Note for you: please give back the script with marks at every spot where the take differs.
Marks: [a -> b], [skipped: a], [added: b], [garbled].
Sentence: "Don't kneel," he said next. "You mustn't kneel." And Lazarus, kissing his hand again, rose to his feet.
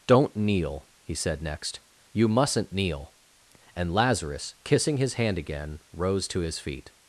"Don't kneel," he said next. "You mustn't kneel." And Lazarus, kissing his hand again, rose to his feet.